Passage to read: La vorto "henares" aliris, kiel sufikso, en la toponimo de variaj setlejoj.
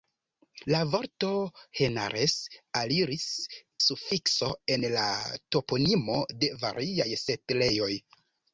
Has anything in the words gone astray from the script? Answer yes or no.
yes